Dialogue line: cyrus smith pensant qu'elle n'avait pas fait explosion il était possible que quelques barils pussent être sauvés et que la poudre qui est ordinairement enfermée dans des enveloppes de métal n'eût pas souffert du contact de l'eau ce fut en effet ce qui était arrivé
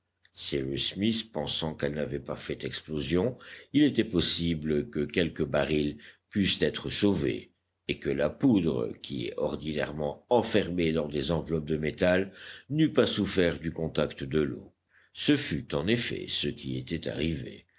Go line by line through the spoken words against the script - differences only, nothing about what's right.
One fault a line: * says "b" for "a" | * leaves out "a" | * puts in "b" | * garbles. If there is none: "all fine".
all fine